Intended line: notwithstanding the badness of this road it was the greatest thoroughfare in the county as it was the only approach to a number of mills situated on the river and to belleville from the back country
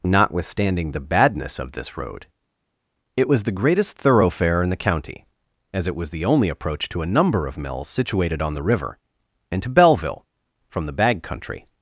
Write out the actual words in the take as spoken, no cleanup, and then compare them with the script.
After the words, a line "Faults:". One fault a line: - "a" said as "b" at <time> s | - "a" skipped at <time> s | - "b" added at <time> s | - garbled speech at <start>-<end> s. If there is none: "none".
notwithstanding the badness of this road it was the greatest thoroughfare in the county as it was the only approach to a number of mills situated on the river and to belleville from the bag country
Faults:
- "back" said as "bag" at 10.9 s